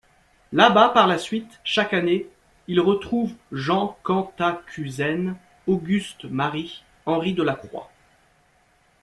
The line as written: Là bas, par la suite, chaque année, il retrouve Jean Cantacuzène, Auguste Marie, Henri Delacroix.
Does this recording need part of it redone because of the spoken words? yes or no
no